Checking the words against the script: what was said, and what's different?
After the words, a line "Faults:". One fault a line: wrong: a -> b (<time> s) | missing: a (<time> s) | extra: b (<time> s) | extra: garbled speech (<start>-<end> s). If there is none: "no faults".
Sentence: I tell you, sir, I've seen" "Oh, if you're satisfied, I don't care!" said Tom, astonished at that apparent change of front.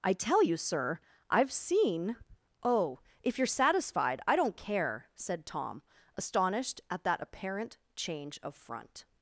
I tell you, sir, I've seen" "Oh, if you're satisfied, I don't care!" said Tom, astonished at that apparent change of front.
Faults:
no faults